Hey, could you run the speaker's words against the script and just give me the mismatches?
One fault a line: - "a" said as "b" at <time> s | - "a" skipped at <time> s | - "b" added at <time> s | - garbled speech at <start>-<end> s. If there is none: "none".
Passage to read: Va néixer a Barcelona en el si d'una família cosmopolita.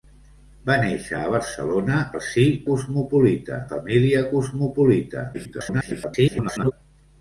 - "en" skipped at 2.0 s
- "d'una" said as "cosmopolita" at 2.7 s
- garbled speech at 5.3-6.7 s